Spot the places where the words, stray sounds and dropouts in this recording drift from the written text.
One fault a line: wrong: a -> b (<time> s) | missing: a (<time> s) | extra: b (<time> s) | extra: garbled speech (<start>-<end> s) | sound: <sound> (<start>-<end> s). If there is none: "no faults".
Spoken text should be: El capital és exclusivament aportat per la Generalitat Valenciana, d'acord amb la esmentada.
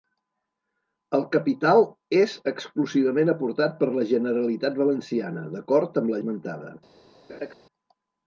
sound: laugh (7.3-7.5 s)